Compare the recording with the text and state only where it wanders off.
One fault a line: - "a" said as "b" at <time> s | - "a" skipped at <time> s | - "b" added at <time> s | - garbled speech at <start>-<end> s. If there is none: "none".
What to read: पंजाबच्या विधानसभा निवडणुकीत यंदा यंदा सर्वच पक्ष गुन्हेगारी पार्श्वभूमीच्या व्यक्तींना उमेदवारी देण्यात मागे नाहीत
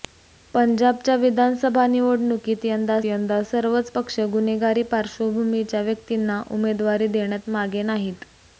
none